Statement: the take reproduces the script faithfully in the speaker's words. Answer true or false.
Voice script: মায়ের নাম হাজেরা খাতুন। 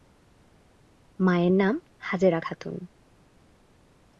true